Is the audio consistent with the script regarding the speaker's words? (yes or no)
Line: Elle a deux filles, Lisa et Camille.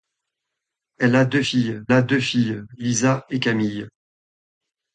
no